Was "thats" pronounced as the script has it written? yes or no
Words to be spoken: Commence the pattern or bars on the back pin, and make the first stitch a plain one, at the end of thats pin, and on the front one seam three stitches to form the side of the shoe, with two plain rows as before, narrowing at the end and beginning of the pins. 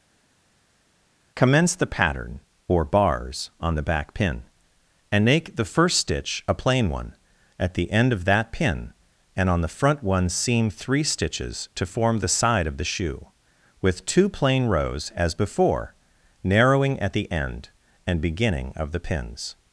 no